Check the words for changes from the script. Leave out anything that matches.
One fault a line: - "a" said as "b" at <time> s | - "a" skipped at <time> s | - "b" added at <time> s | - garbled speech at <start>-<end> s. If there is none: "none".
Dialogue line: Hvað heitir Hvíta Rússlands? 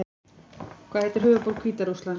- "höfuðborg" added at 1.3 s